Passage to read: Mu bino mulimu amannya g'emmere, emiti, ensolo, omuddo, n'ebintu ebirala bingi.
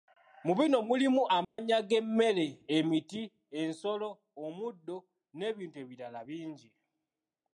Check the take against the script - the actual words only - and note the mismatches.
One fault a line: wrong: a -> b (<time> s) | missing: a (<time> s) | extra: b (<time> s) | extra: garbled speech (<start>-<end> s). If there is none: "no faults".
no faults